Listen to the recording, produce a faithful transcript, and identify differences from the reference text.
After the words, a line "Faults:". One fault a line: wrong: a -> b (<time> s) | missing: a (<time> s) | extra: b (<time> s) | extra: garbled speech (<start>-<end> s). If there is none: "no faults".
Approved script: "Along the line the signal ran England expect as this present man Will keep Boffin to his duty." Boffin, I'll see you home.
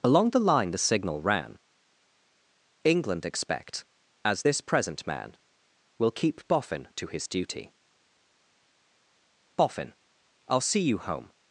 "Along the line the signal ran England expect as this present man Will keep Boffin to his duty." Boffin, I'll see you home.
Faults:
no faults